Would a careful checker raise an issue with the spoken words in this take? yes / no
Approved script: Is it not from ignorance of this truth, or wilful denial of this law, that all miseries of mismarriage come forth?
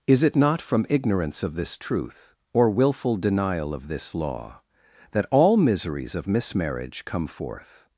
no